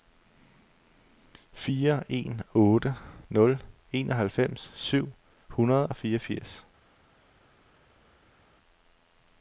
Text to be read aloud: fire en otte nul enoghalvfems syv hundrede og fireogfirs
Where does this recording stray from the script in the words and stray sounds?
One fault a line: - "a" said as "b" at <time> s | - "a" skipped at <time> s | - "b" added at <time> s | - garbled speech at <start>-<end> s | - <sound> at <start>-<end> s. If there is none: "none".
none